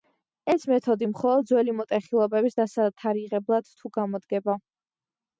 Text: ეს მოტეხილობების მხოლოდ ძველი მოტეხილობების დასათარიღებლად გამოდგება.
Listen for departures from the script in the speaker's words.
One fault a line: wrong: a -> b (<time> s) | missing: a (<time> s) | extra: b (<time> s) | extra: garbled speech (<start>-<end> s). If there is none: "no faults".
wrong: მოტეხილობების -> მეთოდი (0.7 s)
extra: თუ (3.8 s)